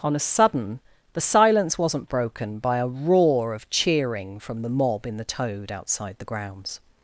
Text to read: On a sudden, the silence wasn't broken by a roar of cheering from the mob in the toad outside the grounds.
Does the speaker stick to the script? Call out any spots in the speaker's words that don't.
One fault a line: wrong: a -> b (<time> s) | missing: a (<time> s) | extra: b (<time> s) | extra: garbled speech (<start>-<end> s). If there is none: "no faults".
no faults